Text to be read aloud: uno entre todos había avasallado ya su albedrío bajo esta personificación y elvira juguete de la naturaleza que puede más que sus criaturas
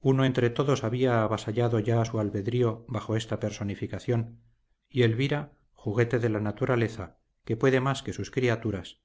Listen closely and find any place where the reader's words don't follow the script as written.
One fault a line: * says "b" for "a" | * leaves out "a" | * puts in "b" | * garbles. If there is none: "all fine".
all fine